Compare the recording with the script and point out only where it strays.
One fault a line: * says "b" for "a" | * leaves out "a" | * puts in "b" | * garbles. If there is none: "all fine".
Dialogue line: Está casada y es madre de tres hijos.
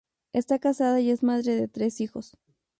all fine